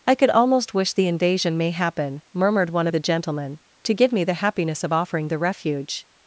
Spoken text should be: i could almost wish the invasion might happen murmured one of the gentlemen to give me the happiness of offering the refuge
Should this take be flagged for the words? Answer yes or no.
yes